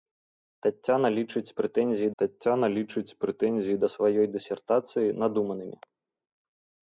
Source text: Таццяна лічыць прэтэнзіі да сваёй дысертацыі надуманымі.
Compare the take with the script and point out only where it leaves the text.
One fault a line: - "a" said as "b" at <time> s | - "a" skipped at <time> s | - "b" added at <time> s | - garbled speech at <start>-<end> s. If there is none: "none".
- "таццяна лічыць прэтэнзіі" added at 2.2 s